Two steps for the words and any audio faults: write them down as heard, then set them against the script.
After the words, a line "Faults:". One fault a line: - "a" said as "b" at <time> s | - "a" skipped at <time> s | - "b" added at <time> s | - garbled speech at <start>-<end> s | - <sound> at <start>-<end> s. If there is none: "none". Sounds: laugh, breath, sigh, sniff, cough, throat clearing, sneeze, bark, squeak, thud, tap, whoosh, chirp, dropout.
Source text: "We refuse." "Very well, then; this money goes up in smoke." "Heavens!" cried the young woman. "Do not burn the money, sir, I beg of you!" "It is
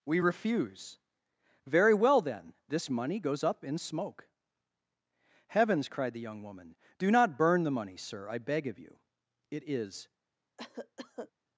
"We refuse." "Very well, then; this money goes up in smoke." "Heavens!" cried the young woman. "Do not burn the money, sir, I beg of you!" "It is
Faults:
- cough at 10.6-11.3 s